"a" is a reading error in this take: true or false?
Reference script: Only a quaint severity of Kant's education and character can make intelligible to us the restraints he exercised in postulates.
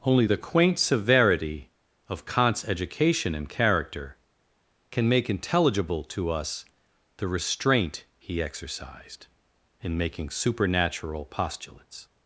true